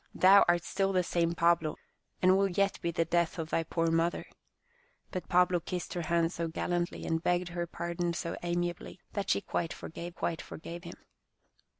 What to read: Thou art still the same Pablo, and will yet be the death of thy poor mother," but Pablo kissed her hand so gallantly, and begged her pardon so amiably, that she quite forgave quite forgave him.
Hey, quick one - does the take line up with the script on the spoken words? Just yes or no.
yes